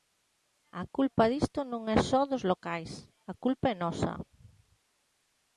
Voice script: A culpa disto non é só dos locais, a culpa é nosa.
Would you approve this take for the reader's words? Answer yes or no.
yes